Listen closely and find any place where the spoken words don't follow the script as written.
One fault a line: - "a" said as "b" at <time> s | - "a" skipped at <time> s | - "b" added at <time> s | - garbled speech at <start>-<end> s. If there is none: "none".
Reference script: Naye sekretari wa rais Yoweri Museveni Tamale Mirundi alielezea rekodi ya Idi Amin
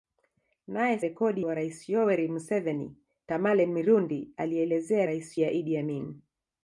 - "sekretari" said as "rekodi" at 1.0 s
- "rekodi" said as "rais" at 5.0 s